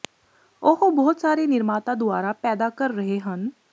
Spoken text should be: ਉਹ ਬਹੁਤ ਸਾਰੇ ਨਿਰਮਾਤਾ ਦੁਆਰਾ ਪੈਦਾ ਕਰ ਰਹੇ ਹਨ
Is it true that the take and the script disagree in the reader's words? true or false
false